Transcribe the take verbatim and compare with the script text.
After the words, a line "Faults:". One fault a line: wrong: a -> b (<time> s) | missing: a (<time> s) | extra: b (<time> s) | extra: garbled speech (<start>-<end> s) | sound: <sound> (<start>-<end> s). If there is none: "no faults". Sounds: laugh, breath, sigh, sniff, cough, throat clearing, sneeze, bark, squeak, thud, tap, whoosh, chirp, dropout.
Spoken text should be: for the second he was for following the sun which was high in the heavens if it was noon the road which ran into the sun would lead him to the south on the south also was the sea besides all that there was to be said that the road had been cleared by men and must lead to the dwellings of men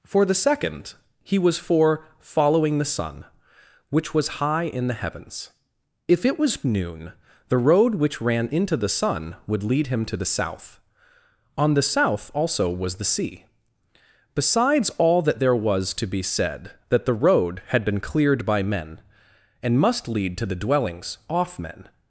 for the second he was for following the sun which was high in the heavens if it was noon the road which ran into the sun would lead him to the south on the south also was the sea besides all that there was to be said that the road had been cleared by men and must lead to the dwellings off men
Faults:
wrong: of -> off (21.3 s)